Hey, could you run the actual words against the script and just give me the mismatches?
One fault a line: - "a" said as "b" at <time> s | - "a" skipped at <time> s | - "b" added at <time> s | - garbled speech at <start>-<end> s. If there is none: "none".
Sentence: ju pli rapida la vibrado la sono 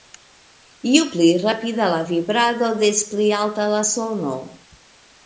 - "des pli alta" added at 2.8 s